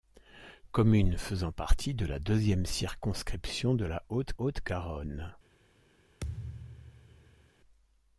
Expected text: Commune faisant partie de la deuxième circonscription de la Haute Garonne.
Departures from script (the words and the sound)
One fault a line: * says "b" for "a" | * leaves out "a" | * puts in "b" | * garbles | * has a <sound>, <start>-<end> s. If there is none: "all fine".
* puts in "Haute"
* has a thud, 6.2-7.5 s